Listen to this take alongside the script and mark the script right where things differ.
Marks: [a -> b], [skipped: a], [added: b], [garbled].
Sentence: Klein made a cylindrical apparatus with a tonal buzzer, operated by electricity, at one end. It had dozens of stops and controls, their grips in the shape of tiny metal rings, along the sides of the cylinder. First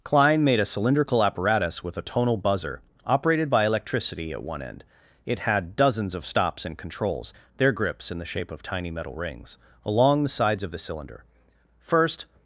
Klein made a cylindrical apparatus with a tonal buzzer, operated by electricity, at one end. It had dozens of stops and controls, their grips in the shape of tiny metal rings, along the sides of the cylinder. First